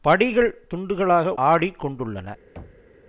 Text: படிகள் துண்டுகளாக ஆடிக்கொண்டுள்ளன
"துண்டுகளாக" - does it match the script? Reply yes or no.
yes